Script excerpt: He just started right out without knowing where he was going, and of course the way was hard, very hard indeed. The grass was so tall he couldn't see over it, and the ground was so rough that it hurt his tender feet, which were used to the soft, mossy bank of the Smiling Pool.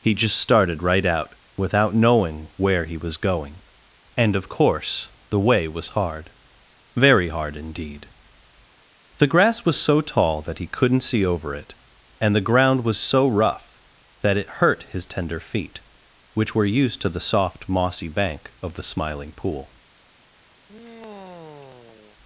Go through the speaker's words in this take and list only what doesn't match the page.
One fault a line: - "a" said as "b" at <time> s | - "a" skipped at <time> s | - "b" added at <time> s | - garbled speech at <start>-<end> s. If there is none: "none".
- "that" added at 10.4 s